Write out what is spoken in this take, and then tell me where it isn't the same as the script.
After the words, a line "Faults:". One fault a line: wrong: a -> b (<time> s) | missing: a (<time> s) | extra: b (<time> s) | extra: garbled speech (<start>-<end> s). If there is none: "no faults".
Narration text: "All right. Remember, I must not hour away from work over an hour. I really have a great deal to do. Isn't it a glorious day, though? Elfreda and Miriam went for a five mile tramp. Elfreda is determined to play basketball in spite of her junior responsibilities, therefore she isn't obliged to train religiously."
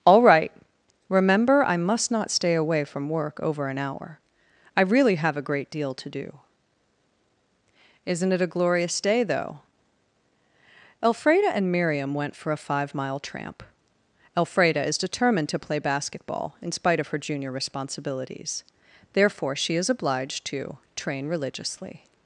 "All right. Remember, I must not stay away from work over an hour. I really have a great deal to do. Isn't it a glorious day, though? Elfreda and Miriam went for a five mile tramp. Elfreda is determined to play basketball in spite of her junior responsibilities, therefore she is obliged to train religiously."
Faults:
wrong: hour -> stay (2.3 s)
wrong: isn't -> is (19.8 s)